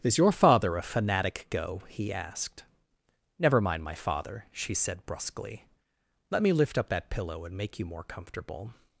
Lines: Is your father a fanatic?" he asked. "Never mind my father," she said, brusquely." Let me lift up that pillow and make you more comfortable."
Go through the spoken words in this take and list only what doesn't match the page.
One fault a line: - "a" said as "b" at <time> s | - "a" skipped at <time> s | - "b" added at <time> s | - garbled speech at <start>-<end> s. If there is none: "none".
- "go" added at 1.5 s